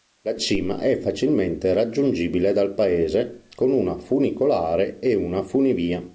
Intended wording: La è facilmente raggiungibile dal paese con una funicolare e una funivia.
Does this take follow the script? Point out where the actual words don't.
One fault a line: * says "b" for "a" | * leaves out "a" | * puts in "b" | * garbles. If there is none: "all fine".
* puts in "cima"